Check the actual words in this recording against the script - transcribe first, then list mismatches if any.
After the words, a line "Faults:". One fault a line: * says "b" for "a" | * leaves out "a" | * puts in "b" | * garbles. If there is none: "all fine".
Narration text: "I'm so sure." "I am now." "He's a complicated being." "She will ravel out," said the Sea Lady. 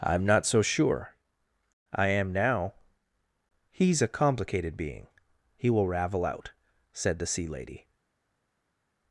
"I'm not so sure." "I am now." "He's a complicated being." "He will ravel out," said the Sea Lady.
Faults:
* puts in "not"
* says "He" for "She"